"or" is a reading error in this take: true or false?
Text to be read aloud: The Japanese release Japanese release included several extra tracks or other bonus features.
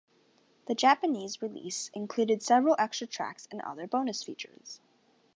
true